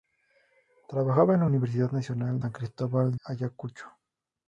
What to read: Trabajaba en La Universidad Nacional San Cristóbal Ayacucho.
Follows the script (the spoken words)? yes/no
yes